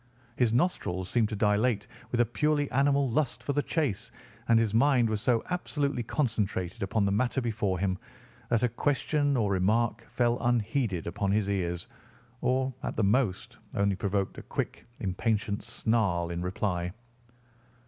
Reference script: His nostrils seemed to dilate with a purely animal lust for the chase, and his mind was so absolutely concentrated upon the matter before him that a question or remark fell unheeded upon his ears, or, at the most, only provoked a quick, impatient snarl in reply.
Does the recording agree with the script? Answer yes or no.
yes